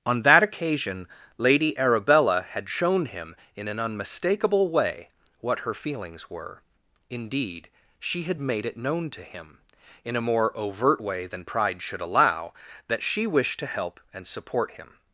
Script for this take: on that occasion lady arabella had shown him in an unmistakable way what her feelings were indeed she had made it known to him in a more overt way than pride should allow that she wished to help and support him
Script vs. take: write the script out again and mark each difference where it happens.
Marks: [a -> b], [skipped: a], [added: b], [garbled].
on that occasion lady arabella had shown him in an unmistakable way what her feelings were indeed she had made it known to him in a more overt way than pride should allow that she wished to help and support him